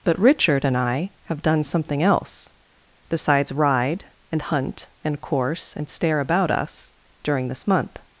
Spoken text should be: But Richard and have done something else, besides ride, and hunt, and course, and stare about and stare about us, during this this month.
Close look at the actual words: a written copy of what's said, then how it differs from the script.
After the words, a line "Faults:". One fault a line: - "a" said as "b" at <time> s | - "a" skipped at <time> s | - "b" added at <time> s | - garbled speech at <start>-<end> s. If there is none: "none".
But Richard and I have done something else, besides ride, and hunt, and course, and stare about us, during this month.
Faults:
- "I" added at 0.8 s
- "and stare about" skipped at 6.5 s
- "this" skipped at 7.7 s